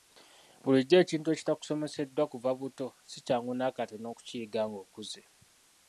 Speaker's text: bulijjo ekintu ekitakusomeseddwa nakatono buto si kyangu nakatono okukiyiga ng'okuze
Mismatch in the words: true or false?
true